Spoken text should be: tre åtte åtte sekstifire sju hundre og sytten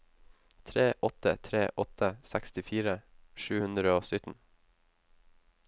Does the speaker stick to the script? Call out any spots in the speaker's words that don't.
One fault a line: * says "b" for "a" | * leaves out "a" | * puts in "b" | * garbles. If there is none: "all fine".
* puts in "tre"